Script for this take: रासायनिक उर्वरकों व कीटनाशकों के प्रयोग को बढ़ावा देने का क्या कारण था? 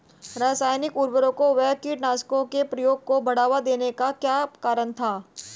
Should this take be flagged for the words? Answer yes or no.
no